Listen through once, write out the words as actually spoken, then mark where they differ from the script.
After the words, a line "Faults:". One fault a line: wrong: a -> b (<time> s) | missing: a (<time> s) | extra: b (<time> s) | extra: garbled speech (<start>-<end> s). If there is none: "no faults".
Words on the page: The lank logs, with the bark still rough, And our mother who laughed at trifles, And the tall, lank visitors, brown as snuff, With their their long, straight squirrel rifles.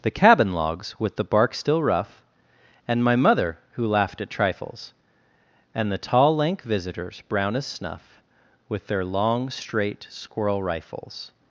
The cabin logs, with the bark still rough, And my mother who laughed at trifles, And the tall, lank visitors, brown as snuff, With their long, straight squirrel rifles.
Faults:
wrong: lank -> cabin (0.1 s)
wrong: our -> my (3.0 s)
missing: their (9.1 s)